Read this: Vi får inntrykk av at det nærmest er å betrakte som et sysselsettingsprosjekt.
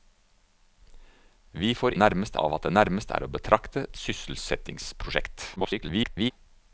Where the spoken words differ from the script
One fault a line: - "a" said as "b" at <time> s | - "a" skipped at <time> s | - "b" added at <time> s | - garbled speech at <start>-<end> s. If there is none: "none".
- "inntrykk" said as "nærmest" at 2.0 s
- "som" skipped at 3.8 s
- garbled speech at 5.6-6.3 s